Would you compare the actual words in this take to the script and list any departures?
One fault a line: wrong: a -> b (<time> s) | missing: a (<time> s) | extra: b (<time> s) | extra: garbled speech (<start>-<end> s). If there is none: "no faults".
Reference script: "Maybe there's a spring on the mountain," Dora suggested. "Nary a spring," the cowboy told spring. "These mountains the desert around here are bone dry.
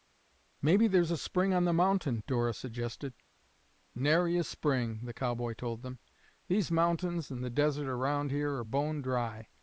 wrong: spring -> them (5.8 s)
extra: and (7.3 s)